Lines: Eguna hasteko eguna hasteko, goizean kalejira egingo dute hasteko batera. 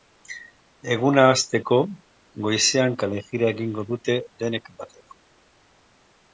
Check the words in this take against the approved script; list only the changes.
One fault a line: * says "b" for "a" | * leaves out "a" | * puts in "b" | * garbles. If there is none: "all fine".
* leaves out "eguna hasteko"
* says "denek" for "hasteko"